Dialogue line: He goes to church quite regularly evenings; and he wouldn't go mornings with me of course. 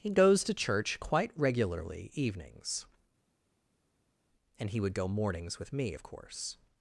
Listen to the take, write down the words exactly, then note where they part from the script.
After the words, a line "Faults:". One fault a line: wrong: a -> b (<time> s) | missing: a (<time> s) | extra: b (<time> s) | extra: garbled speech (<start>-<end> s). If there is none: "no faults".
He goes to church quite regularly evenings; and he would go mornings with me of course.
Faults:
wrong: wouldn't -> would (4.8 s)